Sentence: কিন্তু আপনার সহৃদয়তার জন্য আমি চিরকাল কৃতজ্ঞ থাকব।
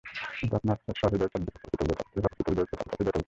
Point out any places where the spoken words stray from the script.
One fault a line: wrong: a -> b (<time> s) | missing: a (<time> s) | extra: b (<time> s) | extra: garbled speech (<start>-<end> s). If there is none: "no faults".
missing: জন্য আমি (1.4 s)
extra: garbled speech (2.2-3.2 s)